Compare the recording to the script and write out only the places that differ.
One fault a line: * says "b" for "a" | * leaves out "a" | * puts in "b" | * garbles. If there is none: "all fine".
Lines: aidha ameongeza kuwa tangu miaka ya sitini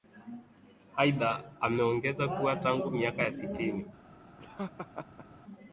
all fine